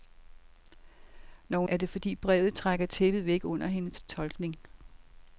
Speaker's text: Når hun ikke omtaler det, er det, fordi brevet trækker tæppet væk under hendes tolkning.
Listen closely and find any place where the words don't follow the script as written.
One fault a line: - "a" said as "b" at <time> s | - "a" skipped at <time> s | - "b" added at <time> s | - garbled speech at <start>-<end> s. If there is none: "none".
- "ikke omtaler det" skipped at 1.7 s